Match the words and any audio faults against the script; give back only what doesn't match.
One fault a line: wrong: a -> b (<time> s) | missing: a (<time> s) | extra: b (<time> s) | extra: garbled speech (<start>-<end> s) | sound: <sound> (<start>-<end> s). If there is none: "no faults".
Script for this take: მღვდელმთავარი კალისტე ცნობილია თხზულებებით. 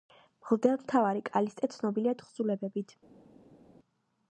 no faults